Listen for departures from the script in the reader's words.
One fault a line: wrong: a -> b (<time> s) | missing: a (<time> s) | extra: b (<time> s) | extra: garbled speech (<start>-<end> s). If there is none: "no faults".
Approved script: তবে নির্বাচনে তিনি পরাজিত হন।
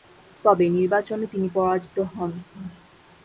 no faults